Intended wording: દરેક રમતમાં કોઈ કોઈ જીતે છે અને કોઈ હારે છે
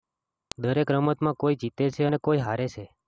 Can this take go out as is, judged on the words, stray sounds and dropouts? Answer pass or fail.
fail